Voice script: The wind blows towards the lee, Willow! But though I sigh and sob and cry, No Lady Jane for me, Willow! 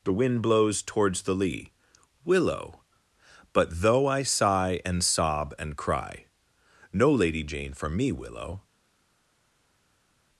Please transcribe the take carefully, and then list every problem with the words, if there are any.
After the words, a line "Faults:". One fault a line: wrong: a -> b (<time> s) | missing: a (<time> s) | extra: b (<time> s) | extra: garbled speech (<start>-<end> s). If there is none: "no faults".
The wind blows towards the lee, Willow! But though I sigh and sob and cry, No Lady Jane for me, Willow!
Faults:
no faults